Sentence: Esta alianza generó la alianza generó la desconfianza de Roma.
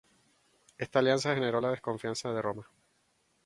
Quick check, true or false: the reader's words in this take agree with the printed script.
false